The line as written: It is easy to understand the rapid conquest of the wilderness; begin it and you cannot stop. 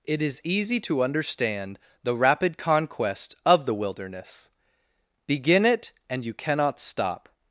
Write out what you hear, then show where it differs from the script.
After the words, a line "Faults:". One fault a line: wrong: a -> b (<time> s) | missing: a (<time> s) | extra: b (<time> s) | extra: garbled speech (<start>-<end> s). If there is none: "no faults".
It is easy to understand the rapid conquest of the wilderness; begin it and you cannot stop.
Faults:
no faults